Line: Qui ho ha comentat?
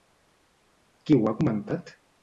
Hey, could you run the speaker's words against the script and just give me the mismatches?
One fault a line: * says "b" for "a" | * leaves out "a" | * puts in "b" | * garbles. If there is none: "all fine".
all fine